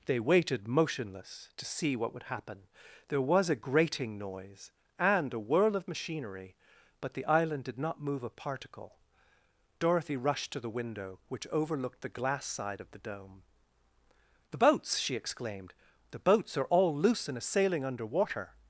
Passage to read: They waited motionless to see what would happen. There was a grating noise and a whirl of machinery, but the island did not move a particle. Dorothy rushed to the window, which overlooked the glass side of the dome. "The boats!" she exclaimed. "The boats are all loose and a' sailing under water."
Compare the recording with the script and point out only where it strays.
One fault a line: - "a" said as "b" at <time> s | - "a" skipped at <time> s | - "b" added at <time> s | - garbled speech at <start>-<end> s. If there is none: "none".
none